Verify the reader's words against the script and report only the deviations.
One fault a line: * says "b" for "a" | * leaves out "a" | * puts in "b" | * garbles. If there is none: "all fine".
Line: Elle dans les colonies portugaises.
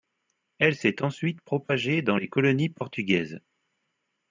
* puts in "s'est ensuite propagée"